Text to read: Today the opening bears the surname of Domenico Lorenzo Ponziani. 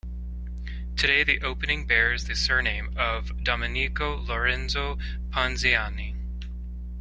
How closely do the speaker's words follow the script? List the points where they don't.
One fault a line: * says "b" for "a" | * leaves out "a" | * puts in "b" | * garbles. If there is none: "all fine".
all fine